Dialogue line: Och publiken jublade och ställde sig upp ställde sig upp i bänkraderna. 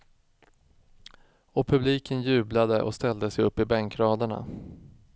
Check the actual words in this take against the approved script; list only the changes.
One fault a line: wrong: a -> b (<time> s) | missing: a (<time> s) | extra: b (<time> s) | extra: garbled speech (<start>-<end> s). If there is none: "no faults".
missing: ställde sig upp (3.6 s)